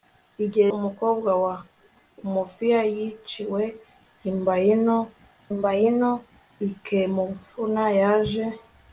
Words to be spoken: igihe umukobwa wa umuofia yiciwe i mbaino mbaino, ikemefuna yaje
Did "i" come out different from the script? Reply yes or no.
no